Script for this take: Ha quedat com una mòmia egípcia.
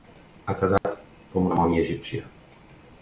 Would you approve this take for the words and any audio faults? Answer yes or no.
no